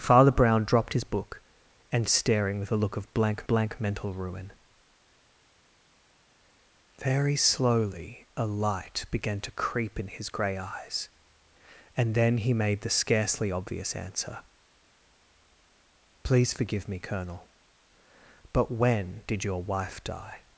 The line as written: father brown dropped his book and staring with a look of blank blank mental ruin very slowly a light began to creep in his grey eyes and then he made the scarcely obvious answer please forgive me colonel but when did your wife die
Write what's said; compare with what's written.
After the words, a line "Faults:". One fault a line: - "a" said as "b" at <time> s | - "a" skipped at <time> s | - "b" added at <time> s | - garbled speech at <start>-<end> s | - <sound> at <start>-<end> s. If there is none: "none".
father brown dropped his book and staring with a look of blank blank mental ruin very slowly a light began to creep in his grey eyes and then he made the scarcely obvious answer please forgive me colonel but when did your wife die
Faults:
none